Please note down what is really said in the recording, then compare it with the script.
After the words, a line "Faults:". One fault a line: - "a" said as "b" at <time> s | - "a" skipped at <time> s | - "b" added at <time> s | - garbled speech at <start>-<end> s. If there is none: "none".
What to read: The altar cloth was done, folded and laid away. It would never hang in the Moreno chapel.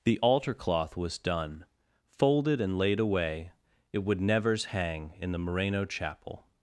The altar cloth was done, folded and laid away. It would nevers hang in the Moreno chapel.
Faults:
- "never" said as "nevers" at 4.2 s